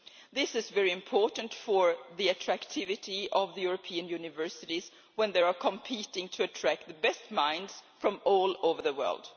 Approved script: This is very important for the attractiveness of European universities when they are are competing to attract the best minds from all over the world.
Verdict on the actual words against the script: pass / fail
fail